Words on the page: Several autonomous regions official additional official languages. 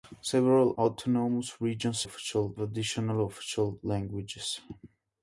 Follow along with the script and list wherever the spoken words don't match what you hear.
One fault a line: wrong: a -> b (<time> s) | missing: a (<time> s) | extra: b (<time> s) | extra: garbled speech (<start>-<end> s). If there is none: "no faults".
no faults